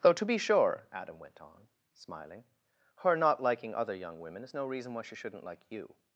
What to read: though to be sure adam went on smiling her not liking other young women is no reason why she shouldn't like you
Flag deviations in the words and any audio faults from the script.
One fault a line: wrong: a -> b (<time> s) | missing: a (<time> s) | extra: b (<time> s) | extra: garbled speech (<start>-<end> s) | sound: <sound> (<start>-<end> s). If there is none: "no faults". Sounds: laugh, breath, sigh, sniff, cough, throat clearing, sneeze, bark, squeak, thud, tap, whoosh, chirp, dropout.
no faults